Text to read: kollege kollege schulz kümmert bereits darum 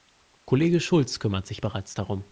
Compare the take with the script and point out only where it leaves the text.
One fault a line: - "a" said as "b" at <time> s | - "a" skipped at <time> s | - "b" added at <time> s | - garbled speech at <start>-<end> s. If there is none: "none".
- "kollege" skipped at 0.8 s
- "sich" added at 1.5 s